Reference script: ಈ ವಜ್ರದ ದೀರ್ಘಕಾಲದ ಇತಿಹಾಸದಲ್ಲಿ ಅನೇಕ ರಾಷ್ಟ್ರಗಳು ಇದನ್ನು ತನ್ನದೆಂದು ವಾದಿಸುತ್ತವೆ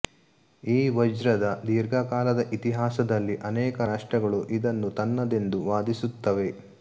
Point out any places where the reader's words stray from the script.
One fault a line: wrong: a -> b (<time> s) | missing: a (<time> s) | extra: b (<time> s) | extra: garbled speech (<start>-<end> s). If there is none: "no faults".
no faults